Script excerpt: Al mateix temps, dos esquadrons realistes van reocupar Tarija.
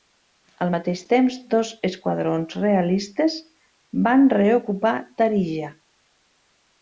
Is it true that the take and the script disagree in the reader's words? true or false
false